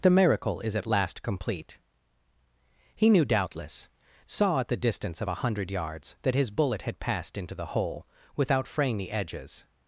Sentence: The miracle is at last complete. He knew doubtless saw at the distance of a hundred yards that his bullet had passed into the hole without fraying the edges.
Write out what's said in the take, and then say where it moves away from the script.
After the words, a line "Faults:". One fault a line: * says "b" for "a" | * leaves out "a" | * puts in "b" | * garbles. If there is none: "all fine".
The miracle is at last complete. He knew doubtless saw at the distance of a hundred yards that his bullet had passed into the hole without fraying the edges.
Faults:
all fine